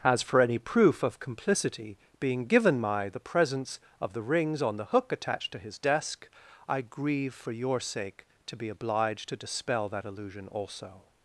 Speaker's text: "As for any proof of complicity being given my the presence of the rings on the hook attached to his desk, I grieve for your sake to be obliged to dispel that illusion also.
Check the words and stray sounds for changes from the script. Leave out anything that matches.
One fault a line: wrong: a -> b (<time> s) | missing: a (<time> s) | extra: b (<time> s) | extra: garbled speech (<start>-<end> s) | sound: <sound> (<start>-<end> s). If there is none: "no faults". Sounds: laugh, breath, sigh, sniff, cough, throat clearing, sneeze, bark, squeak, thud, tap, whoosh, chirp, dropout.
no faults